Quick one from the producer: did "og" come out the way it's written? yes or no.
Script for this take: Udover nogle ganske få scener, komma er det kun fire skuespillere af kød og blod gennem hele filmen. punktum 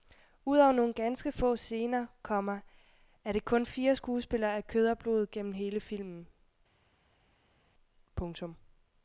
yes